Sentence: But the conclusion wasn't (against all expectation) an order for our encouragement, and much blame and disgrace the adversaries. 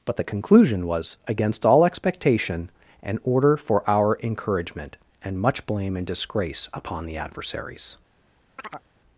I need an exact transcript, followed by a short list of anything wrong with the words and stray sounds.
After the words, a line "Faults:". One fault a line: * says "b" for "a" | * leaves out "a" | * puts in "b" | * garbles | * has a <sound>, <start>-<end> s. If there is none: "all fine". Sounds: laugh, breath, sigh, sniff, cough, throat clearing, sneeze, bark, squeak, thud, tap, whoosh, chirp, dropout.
But the conclusion was (against all expectation) an order for our encouragement, and much blame and disgrace upon the adversaries.
Faults:
* says "was" for "wasn't"
* puts in "upon"
* has a chirp, 8.6-8.9 s